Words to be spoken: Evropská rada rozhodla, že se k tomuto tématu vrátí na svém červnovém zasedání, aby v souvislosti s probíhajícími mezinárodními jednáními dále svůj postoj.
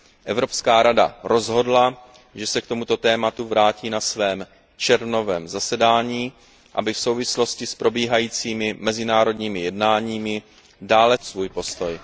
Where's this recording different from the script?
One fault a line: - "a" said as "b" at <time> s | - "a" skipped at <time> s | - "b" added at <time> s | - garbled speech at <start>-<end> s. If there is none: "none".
none